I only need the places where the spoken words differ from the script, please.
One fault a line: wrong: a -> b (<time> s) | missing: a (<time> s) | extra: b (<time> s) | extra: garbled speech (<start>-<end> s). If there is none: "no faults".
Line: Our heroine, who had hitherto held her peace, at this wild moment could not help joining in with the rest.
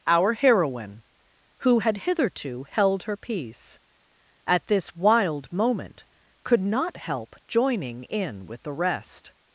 no faults